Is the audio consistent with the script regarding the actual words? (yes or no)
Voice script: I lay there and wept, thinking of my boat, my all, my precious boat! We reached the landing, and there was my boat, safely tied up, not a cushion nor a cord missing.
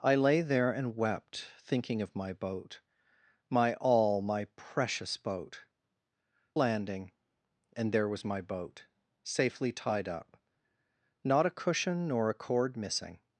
no